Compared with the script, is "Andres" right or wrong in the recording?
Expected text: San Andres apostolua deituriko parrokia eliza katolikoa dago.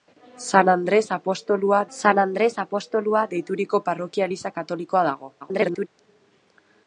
right